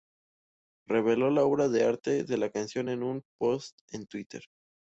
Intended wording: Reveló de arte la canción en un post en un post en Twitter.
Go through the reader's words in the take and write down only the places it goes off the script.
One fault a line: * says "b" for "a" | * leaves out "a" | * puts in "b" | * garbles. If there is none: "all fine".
* puts in "la obra"
* puts in "de"
* leaves out "un post en"